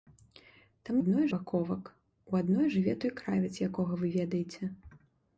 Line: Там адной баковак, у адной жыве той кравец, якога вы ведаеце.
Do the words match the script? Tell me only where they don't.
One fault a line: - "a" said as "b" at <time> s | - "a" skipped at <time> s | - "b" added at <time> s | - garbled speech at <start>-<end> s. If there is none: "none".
none